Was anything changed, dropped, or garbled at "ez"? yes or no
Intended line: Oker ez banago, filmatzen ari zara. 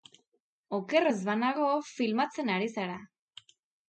no